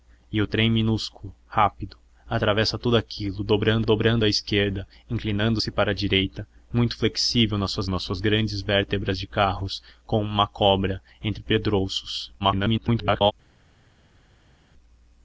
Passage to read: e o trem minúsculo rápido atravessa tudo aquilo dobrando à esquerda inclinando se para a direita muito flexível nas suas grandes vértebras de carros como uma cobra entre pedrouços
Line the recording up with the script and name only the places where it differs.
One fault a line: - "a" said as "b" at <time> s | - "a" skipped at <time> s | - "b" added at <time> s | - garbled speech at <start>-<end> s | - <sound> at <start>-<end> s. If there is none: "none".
- "dobrando" added at 3.8 s
- "nas suas" added at 7.9 s
- garbled speech at 12.4-13.3 s